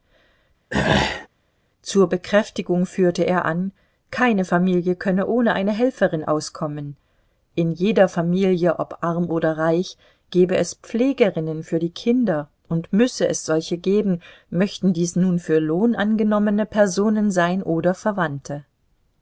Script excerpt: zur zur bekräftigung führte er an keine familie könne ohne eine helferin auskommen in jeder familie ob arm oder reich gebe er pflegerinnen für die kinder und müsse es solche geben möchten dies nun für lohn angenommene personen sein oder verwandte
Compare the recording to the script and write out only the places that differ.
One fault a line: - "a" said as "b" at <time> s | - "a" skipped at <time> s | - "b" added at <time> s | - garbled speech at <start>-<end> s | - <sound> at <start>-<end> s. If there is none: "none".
- throat clearing at 0.7-1.3 s
- "zur" skipped at 2.1 s
- "er" said as "es" at 10.6 s